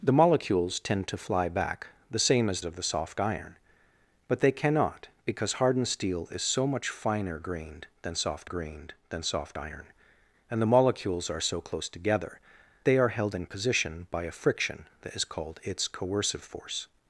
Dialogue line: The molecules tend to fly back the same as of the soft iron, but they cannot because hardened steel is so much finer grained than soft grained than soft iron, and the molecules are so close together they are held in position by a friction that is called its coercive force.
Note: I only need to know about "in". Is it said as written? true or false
true